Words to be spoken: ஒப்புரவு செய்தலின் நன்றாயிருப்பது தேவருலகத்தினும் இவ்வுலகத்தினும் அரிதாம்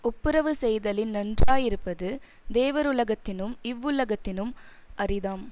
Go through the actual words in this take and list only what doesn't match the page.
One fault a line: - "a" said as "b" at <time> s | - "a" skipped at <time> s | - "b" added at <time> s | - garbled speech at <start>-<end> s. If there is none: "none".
none